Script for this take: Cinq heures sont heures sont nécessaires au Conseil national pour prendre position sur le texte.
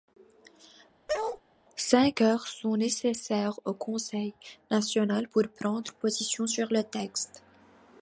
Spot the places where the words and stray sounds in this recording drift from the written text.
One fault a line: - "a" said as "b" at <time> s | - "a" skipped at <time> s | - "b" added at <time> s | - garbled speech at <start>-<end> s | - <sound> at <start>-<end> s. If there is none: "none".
- bark at 1.1-1.4 s
- "heures sont" skipped at 2.8 s